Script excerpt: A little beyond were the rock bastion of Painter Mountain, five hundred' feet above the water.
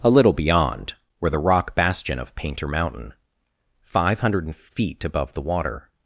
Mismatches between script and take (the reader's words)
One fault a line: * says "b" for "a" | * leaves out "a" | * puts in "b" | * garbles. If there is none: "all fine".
all fine